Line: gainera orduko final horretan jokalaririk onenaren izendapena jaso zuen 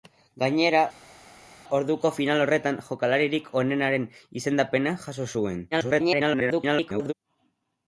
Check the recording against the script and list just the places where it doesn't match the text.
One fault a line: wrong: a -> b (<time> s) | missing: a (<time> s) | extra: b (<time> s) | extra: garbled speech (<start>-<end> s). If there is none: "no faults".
extra: garbled speech (5.7-7.1 s)